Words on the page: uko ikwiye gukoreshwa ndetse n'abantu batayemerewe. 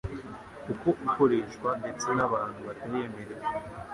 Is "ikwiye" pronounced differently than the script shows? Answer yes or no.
yes